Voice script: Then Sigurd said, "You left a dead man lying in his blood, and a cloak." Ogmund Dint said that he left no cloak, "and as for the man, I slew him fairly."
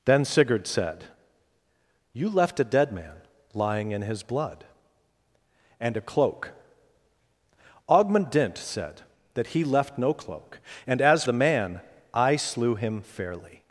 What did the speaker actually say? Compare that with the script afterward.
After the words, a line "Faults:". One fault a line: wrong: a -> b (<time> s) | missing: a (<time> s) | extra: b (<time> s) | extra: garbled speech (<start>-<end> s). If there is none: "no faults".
Then Sigurd said, "You left a dead man lying in his blood, and a cloak." Ogmund Dint said that he left no cloak, "and as the man, I slew him fairly."
Faults:
missing: for (11.2 s)